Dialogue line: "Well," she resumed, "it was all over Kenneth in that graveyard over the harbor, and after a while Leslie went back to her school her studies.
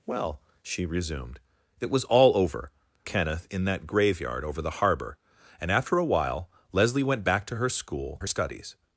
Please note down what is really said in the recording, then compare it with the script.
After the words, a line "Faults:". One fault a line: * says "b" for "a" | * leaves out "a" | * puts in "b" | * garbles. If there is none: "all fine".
"Well," she resumed, "it was all over Kenneth in that graveyard over the harbor, and after a while Leslie went back to her school her studies.
Faults:
all fine